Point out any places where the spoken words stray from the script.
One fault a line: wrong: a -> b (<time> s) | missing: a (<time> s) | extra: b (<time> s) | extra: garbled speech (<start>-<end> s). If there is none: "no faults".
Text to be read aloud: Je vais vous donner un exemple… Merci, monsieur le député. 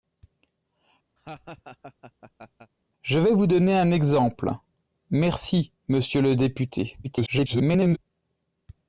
extra: garbled speech (7.0-8.0 s)